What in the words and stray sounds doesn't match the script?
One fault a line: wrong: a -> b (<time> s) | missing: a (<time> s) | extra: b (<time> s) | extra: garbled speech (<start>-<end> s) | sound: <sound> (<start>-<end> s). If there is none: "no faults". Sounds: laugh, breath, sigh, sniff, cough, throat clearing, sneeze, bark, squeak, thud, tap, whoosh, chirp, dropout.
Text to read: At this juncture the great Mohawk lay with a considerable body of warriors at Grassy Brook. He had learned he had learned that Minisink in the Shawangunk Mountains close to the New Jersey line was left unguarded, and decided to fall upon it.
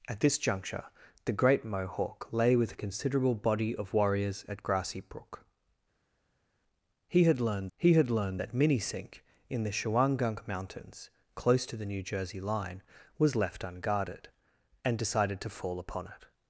no faults